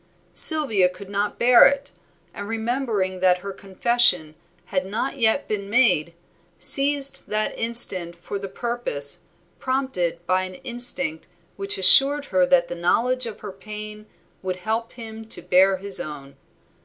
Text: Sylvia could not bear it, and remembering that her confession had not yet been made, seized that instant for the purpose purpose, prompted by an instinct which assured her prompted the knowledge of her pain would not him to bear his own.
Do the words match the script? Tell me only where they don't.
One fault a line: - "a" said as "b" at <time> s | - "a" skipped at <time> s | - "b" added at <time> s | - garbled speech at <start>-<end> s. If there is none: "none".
- "purpose" skipped at 9.2 s
- "prompted" said as "that" at 12.5 s
- "not" said as "help" at 14.5 s